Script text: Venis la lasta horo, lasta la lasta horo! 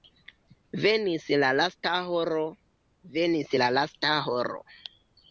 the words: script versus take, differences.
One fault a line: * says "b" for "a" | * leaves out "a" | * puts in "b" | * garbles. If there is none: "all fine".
* says "venis" for "lasta"